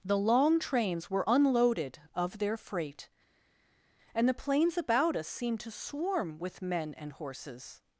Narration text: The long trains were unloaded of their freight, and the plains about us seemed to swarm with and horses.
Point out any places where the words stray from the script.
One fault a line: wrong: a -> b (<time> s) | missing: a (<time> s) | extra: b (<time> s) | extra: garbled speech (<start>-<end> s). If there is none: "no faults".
extra: men (6.6 s)